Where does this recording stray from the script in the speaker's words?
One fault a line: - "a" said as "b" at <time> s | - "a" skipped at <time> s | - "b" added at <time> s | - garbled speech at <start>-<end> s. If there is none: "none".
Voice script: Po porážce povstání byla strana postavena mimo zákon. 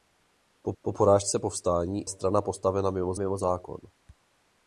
- "po" added at 0.8 s
- "byla" skipped at 2.1 s
- "mimo" added at 3.1 s